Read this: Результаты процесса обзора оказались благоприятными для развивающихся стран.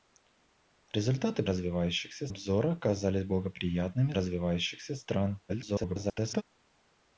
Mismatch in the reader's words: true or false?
true